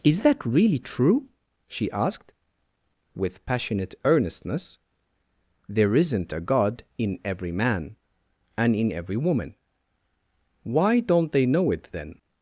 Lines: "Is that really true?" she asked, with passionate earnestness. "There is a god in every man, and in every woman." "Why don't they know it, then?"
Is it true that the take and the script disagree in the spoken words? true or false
true